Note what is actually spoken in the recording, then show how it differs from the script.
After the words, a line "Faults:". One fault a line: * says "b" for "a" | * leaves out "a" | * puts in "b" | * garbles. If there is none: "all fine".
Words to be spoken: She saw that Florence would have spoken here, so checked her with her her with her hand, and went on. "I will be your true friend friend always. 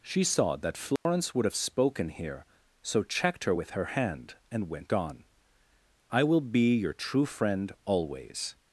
She saw that Florence would have spoken here, so checked her with her hand, and went on. "I will be your true friend always.
Faults:
* leaves out "her with her"
* leaves out "friend"